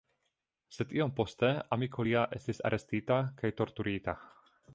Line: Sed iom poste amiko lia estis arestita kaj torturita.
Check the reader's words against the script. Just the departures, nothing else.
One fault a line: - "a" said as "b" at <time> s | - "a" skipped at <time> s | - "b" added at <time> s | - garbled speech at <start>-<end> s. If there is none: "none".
none